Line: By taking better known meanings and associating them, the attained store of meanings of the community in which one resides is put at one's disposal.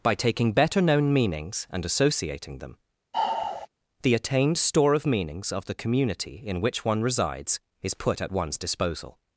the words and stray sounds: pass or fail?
fail